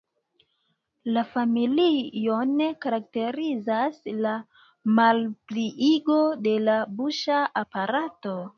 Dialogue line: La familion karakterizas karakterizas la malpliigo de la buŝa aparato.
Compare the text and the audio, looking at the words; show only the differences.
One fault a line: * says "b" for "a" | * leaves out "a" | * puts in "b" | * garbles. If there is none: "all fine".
* leaves out "karakterizas"